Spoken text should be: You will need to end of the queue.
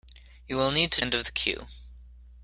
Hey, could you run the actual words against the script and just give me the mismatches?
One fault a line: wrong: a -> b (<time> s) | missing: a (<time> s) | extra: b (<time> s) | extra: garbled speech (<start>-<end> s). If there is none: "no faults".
no faults